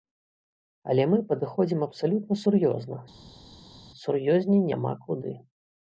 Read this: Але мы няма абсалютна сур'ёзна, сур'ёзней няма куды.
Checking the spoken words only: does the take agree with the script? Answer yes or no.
no